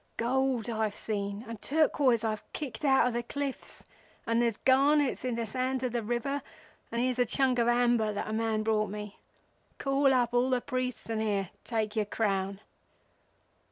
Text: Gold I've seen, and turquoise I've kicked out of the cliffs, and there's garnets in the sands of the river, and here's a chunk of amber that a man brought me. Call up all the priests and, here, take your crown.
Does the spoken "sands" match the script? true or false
true